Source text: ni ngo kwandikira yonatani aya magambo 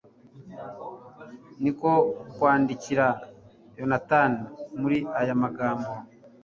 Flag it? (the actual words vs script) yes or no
yes